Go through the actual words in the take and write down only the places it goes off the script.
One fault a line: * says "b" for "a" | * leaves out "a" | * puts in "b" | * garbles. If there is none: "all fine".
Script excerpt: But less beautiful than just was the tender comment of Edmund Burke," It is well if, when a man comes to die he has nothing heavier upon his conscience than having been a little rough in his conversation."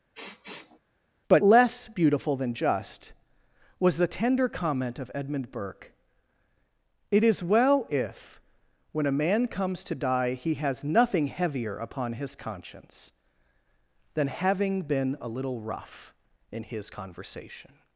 all fine